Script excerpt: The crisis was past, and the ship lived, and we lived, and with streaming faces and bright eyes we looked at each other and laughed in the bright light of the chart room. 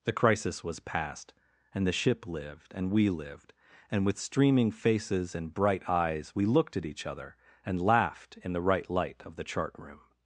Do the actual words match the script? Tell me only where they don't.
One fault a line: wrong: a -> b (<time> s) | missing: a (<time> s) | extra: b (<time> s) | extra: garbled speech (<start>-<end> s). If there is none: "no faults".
wrong: bright -> right (8.6 s)